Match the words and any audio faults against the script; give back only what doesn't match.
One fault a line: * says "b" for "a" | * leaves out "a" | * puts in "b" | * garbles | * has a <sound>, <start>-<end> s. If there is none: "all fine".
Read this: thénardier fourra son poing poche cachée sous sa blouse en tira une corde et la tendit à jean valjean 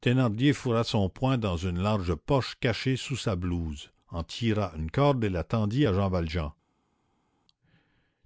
* puts in "dans une large"